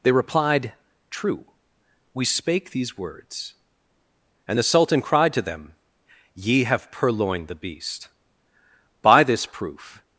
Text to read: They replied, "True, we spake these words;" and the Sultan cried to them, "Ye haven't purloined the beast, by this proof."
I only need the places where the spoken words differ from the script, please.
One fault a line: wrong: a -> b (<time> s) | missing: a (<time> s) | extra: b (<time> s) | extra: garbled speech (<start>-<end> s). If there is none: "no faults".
wrong: haven't -> have (6.6 s)